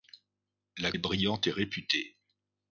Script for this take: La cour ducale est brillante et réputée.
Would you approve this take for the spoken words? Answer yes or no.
no